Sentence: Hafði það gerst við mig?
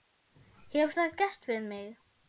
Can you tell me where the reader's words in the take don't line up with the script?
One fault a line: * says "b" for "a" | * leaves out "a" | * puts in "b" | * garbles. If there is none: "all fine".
* says "Hefur" for "Hafði"